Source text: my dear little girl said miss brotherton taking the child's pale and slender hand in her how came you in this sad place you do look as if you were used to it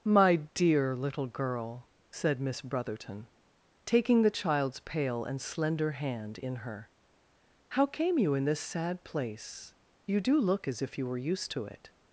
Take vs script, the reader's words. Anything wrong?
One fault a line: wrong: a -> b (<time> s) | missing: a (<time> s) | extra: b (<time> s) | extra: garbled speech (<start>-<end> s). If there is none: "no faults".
no faults